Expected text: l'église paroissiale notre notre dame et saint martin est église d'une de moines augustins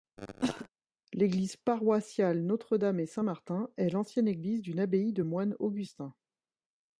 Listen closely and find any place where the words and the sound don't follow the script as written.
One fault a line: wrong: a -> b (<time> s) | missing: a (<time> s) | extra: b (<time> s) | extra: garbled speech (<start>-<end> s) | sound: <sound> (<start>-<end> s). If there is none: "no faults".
sound: cough (0.2-0.7 s)
missing: notre (2.8 s)
extra: l'ancienne (3.9 s)
extra: abbaye (4.8 s)